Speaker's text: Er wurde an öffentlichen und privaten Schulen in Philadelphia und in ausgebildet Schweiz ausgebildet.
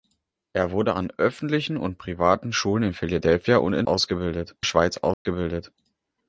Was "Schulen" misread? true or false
false